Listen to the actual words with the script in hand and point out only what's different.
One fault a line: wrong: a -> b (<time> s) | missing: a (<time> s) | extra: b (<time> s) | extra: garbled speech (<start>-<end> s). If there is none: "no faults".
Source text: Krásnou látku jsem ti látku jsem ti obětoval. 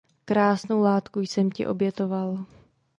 missing: látku jsem ti (1.7 s)